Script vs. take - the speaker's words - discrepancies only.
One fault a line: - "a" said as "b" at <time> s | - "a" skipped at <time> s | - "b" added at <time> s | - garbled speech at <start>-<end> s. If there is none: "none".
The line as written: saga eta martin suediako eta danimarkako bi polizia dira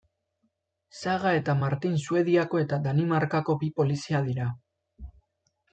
none